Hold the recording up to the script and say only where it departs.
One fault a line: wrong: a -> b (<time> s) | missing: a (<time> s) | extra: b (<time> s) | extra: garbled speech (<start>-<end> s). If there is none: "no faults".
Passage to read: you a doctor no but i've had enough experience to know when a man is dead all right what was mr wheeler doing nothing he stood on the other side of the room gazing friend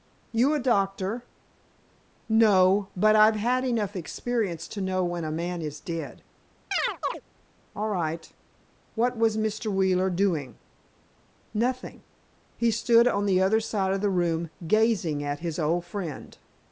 extra: at his old (15.2 s)